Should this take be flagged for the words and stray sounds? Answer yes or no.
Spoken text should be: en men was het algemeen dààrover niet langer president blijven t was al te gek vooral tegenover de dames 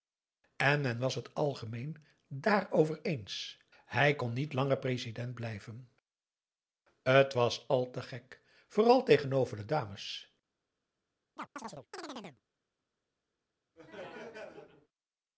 yes